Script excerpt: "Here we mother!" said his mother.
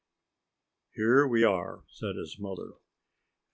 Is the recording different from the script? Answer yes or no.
yes